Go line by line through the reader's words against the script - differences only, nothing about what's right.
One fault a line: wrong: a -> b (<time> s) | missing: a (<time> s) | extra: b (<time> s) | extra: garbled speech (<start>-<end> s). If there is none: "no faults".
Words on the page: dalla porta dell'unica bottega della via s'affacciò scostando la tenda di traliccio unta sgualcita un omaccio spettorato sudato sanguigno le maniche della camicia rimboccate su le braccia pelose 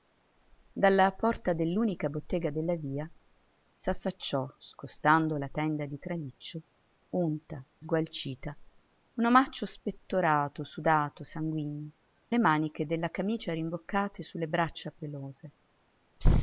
no faults